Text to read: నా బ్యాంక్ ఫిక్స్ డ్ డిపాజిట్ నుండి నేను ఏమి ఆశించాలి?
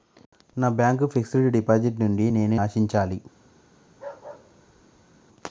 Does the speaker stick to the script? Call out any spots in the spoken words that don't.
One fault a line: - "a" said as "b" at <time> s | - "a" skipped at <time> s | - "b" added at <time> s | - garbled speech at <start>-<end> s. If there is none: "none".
- "ఏమి" skipped at 2.5 s